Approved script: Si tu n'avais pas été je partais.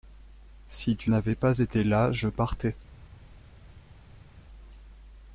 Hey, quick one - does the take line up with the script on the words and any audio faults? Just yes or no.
no